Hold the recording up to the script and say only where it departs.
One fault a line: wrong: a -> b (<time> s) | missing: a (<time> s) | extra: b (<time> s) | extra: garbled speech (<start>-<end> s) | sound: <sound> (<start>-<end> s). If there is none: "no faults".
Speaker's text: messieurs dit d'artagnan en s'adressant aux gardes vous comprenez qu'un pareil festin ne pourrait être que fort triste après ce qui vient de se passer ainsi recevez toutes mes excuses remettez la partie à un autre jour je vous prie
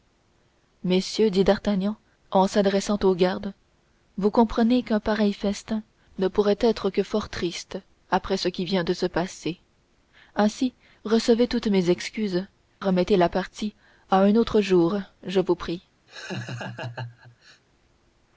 sound: laugh (16.1-17.6 s)